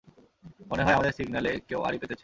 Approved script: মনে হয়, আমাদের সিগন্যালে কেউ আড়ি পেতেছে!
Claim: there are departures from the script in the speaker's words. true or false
false